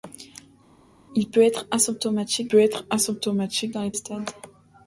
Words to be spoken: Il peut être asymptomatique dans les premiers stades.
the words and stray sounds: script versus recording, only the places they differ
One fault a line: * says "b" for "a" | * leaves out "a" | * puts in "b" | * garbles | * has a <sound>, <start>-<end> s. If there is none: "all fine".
* puts in "peut être asymptomatique"
* leaves out "premiers"